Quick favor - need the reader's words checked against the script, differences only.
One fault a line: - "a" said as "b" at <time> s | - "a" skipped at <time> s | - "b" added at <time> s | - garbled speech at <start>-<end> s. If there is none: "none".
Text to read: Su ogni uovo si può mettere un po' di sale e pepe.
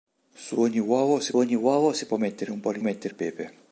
- "ogni uovo si" added at 1.4 s
- "sale" said as "mettere" at 2.8 s